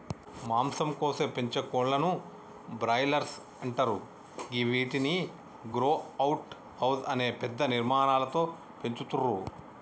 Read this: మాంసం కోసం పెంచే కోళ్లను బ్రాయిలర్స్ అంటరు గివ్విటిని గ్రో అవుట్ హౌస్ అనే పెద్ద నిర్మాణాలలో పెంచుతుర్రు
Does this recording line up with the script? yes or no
yes